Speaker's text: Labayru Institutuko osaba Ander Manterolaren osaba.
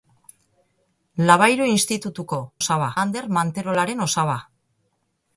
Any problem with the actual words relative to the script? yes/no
no